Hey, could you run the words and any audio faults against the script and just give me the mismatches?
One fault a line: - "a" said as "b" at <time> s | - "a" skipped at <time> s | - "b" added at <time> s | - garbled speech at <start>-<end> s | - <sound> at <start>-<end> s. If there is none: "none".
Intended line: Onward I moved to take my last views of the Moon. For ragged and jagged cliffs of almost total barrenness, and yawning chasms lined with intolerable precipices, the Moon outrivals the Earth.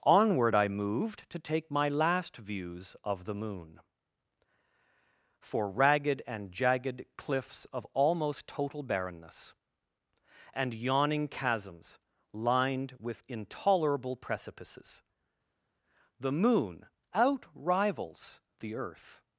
none